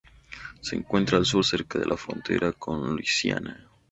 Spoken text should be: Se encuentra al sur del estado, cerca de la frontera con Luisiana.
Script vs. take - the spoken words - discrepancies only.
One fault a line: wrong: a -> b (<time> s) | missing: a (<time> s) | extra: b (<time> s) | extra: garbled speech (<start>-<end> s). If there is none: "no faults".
missing: del estado (1.4 s)